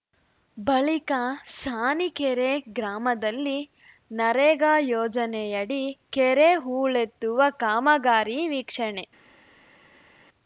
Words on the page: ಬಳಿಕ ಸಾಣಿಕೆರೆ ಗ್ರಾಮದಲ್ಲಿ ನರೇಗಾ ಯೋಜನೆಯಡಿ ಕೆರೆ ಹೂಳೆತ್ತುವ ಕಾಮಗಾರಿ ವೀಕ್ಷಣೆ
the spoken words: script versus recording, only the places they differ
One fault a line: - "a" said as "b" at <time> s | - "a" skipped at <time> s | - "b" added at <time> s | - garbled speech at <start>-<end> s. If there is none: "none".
none